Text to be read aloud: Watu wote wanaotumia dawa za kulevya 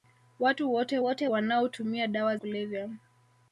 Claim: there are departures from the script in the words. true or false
true